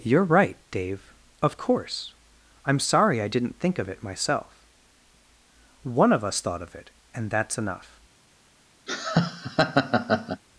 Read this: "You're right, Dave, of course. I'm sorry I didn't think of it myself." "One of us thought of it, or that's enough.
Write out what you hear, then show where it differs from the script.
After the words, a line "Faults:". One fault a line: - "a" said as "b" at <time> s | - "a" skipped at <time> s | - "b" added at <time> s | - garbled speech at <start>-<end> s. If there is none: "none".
"You're right, Dave, of course. I'm sorry I didn't think of it myself." "One of us thought of it, and that's enough.
Faults:
- "or" said as "and" at 7.1 s